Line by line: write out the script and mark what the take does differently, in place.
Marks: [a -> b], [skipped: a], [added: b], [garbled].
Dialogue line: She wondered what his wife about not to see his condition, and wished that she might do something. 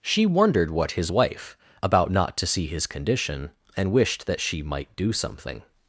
She wondered what his wife about not to see his condition, and wished that she might do something.